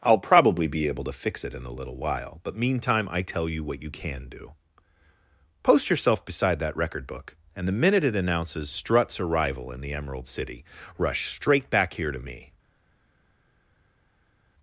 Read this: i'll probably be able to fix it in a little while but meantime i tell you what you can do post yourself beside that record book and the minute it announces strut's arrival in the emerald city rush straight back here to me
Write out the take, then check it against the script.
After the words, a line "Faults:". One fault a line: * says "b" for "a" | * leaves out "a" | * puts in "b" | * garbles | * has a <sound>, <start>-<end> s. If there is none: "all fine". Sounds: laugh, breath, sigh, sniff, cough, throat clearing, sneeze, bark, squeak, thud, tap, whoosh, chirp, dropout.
i'll probably be able to fix it in a little while but meantime i tell you what you can do post yourself beside that record book and the minute it announces strut's arrival in the emerald city rush straight back here to me
Faults:
all fine